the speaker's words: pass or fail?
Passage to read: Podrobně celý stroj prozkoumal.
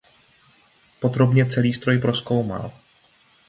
pass